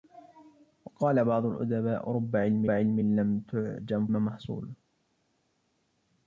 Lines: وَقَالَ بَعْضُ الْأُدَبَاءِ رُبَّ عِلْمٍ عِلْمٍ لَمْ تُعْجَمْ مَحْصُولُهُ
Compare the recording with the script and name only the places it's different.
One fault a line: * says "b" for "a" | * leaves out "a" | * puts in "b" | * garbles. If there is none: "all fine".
all fine